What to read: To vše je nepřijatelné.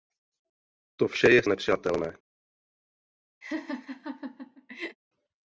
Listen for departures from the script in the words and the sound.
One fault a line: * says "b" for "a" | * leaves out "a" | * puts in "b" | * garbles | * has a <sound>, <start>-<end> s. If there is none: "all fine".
* has a laugh, 3.4-5.0 s